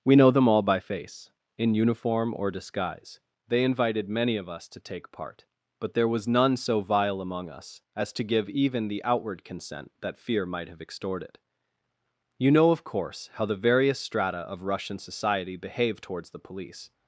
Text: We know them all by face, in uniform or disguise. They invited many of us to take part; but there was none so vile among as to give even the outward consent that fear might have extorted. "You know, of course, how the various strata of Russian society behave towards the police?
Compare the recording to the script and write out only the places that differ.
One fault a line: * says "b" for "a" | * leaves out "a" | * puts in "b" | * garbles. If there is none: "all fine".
* puts in "us"